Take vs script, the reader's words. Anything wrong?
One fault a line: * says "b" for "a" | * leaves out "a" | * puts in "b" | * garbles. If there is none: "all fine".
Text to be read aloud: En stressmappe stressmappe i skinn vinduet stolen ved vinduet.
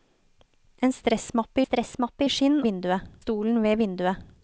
all fine